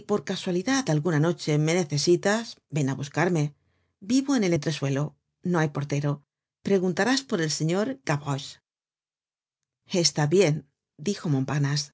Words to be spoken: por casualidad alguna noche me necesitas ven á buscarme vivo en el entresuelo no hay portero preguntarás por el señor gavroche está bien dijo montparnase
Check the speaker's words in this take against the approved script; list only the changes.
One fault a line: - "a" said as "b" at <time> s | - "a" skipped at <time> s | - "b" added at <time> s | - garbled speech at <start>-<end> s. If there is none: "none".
none